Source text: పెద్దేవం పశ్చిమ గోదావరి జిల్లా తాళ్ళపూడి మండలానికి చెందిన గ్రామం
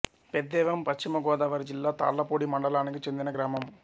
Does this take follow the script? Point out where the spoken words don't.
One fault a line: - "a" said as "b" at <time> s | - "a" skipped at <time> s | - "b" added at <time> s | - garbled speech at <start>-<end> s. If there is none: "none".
none